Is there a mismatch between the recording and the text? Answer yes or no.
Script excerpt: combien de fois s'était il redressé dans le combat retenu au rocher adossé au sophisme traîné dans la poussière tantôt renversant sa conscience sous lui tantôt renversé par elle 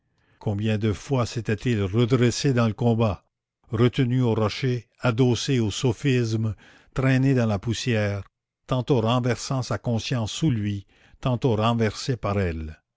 no